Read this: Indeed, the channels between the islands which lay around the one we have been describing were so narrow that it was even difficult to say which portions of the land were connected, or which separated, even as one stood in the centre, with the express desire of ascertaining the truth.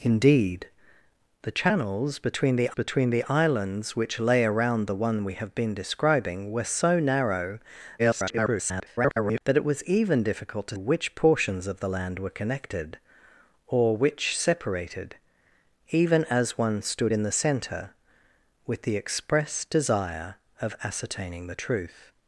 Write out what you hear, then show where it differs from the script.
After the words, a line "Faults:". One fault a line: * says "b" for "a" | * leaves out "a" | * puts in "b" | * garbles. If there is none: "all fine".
Indeed, the channels between the between the islands which lay around the one we have been describing were so narrow [garbled] that it was even difficult to which portions of the land were connected, or which separated, even as one stood in the centre, with the express desire of ascertaining the truth.
Faults:
* puts in "between the"
* garbles
* leaves out "say"